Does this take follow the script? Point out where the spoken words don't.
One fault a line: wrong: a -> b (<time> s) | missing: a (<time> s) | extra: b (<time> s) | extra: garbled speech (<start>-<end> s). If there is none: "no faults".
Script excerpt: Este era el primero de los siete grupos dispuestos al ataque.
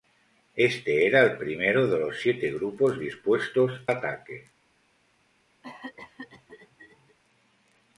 missing: al (3.8 s)